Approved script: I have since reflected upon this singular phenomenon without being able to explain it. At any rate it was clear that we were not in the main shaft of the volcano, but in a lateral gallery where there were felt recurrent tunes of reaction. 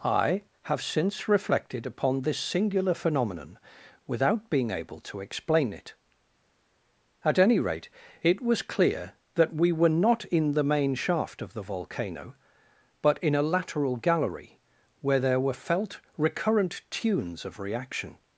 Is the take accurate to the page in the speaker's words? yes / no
yes